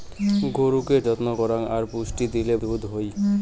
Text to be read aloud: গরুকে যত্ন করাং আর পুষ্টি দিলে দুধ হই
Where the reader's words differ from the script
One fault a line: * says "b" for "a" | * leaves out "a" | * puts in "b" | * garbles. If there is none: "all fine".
all fine